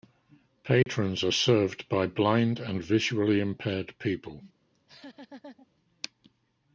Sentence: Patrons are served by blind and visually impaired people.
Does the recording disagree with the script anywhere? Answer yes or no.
no